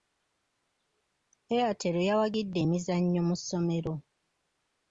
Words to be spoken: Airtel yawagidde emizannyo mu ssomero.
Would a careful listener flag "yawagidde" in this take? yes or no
no